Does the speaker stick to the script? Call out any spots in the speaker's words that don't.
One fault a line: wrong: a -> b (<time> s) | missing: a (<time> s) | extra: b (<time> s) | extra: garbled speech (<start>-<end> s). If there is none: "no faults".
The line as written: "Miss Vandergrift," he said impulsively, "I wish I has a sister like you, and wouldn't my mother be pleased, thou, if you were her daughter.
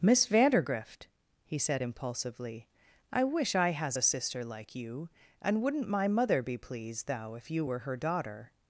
no faults